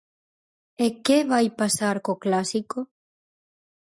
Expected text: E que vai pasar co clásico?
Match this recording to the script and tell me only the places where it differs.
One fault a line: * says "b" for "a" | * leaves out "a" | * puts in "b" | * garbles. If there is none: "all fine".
all fine